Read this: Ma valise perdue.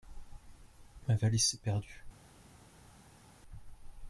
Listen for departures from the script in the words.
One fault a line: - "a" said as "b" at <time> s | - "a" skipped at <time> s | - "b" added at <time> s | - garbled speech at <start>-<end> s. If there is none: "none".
- "s'est" added at 1.4 s